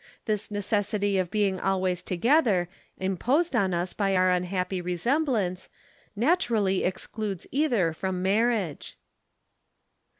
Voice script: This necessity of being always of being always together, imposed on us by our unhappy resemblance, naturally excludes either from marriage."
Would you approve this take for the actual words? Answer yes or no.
no